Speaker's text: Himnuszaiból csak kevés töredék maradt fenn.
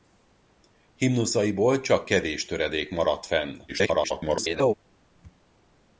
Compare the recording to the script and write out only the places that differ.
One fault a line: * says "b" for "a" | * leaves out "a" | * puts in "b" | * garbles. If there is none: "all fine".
* garbles